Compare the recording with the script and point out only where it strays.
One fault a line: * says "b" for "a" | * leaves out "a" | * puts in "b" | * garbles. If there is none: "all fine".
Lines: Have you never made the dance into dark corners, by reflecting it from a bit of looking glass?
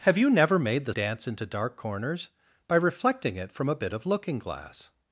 all fine